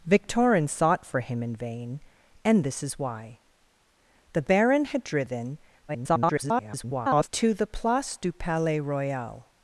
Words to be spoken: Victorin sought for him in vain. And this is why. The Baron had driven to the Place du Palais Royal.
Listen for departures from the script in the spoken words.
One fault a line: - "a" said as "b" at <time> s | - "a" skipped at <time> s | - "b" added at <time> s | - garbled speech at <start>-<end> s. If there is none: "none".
- garbled speech at 5.9-7.3 s